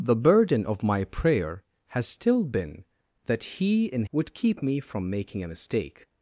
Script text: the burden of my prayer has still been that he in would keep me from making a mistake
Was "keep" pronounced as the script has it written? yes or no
yes